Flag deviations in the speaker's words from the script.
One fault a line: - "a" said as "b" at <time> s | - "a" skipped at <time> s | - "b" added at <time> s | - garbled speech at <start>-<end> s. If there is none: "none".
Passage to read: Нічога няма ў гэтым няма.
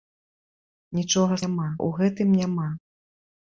none